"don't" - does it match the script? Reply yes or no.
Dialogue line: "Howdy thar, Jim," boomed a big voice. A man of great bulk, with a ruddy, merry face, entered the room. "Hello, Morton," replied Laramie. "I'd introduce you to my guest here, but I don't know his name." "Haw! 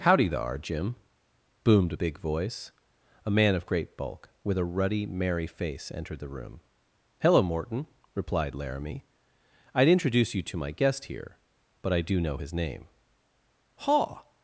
no